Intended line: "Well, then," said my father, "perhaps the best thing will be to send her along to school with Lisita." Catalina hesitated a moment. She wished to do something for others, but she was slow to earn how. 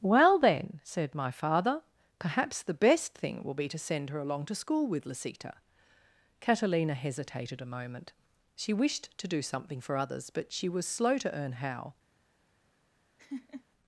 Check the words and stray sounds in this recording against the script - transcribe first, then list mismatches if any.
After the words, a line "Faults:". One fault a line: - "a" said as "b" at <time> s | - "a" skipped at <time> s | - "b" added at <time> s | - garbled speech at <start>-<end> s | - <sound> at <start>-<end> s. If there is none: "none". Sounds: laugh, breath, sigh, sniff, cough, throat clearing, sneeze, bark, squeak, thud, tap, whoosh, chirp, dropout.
"Well, then," said my father, "perhaps the best thing will be to send her along to school with Lisita." Catalina hesitated a moment. She wished to do something for others, but she was slow to earn how.
Faults:
- laugh at 13.2-13.6 s